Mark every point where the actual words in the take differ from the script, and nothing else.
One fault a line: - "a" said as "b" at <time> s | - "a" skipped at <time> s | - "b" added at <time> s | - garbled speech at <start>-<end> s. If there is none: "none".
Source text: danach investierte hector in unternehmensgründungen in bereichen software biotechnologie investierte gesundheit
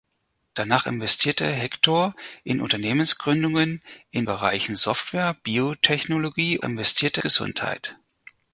none